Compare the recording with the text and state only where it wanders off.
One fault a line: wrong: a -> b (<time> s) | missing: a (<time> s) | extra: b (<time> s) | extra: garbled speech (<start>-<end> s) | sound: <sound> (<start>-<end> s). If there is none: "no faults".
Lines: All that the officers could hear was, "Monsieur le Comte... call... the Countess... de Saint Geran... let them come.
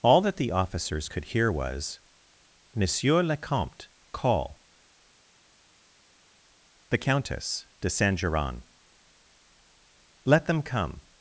no faults